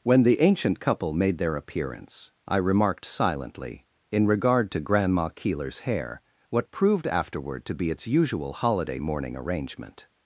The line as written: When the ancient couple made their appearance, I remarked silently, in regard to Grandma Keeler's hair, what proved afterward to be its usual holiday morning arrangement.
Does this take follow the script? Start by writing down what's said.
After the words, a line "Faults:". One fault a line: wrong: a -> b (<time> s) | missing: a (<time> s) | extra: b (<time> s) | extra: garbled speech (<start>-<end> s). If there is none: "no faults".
When the ancient couple made their appearance, I remarked silently, in regard to Grandma Keeler's hair, what proved afterward to be its usual holiday morning arrangement.
Faults:
no faults